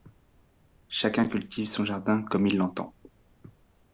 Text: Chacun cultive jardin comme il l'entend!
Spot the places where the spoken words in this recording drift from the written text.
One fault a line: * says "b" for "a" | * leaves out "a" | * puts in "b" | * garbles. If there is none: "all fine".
* puts in "son"